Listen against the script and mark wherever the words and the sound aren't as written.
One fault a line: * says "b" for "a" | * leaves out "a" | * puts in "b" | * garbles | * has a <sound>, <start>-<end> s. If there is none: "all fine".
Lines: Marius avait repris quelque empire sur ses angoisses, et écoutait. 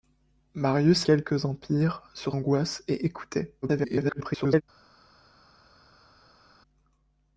* leaves out "avait repris"
* leaves out "ses"
* garbles